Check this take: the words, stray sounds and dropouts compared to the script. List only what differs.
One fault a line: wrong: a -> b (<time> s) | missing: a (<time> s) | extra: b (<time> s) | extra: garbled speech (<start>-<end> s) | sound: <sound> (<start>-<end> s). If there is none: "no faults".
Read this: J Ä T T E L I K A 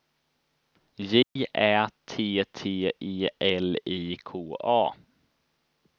sound: dropout (1.2-1.4 s)